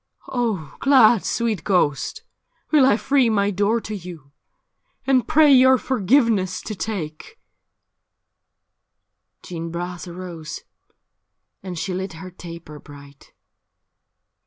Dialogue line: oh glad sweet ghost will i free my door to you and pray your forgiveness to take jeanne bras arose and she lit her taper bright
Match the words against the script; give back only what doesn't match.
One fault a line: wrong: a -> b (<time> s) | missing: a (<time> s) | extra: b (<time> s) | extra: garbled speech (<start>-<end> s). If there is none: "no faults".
no faults